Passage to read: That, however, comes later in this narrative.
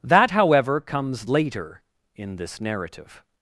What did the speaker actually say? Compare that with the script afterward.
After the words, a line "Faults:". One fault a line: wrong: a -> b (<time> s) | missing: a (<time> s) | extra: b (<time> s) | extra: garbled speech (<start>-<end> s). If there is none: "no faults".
That, however, comes later in this narrative.
Faults:
no faults